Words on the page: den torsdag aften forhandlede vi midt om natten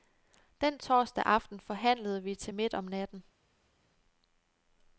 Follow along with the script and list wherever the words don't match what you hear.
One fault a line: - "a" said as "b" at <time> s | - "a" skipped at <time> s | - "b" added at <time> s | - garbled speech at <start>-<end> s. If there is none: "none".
- "til" added at 2.4 s